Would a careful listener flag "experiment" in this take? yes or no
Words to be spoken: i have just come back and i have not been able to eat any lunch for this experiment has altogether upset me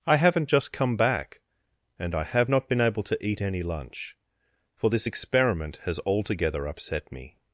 no